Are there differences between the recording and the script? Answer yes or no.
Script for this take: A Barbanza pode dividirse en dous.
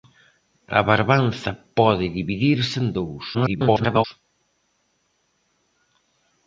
yes